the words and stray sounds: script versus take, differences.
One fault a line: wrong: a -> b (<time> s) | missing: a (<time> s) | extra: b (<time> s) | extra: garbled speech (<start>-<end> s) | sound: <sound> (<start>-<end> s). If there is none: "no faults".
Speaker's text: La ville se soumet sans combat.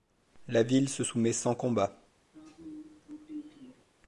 sound: throat clearing (2.3-3.8 s)